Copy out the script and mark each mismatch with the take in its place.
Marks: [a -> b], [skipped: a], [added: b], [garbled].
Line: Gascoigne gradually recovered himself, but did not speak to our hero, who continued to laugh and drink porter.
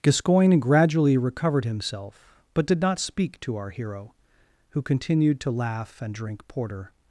Gascoigne gradually recovered himself, but did not speak to our hero, who continued to laugh and drink porter.